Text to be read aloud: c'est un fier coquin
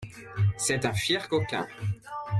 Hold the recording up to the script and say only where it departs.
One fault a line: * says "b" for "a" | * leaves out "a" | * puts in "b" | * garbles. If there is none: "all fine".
all fine